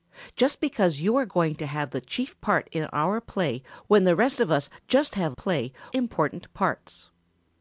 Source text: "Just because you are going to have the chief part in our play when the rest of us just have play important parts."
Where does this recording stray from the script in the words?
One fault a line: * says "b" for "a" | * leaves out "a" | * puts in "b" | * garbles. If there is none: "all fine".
all fine